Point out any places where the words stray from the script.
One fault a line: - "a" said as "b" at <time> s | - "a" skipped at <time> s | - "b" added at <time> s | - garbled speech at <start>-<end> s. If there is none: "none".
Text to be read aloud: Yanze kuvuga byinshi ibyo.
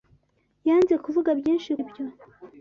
none